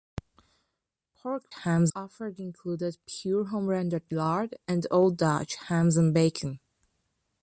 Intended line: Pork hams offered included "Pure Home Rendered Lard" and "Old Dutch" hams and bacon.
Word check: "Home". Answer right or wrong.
right